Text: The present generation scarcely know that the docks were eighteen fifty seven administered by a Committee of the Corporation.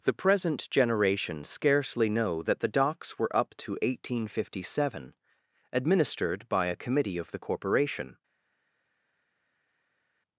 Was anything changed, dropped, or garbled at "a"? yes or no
no